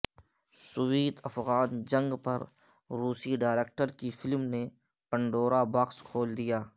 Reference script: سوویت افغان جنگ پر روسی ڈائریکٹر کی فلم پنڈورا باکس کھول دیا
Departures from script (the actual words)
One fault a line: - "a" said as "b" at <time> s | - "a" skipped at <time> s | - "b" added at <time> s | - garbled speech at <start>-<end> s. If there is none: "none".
- "نے" added at 4.5 s